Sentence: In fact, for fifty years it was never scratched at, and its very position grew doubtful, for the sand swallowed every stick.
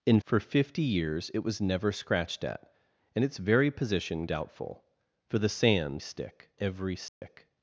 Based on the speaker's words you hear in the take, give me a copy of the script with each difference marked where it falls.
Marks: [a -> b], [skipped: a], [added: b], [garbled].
In [skipped: fact,] for fifty years it was never scratched at, and its very position [skipped: grew] doubtful, for the sand [swallowed -> stick] every stick.